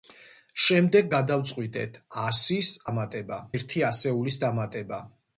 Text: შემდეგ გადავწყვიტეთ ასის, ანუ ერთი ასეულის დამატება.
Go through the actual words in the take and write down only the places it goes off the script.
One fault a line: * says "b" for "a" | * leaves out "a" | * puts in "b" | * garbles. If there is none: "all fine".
* says "დამატება" for "ანუ"